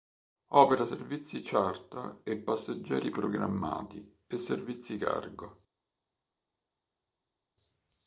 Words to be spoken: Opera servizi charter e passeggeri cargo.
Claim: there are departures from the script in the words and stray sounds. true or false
true